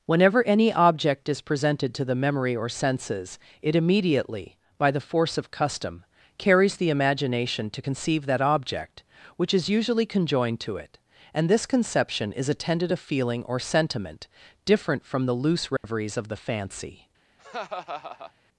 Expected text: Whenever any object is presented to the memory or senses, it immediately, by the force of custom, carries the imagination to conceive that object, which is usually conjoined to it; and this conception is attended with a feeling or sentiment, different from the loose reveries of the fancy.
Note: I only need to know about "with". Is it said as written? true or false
false